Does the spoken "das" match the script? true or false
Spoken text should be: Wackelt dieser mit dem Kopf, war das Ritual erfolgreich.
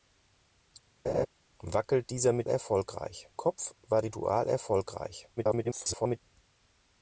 false